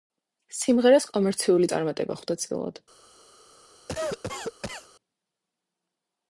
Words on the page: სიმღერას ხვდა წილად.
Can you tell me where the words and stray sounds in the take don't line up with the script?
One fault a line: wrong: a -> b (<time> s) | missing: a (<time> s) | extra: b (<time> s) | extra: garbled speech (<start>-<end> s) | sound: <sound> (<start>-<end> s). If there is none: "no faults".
extra: კომერციული წარმატება (1.2 s)
sound: cough (3.9-4.9 s)